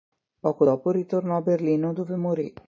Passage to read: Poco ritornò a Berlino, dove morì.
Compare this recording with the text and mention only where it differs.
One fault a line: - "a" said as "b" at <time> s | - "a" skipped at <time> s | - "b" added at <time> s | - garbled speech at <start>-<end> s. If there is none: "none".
- "dopo" added at 0.6 s